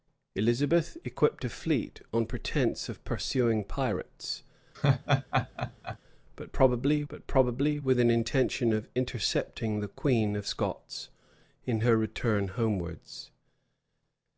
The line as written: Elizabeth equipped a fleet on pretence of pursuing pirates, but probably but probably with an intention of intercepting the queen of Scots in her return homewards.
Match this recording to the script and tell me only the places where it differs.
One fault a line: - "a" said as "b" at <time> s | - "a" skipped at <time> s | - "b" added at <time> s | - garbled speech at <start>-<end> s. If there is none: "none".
none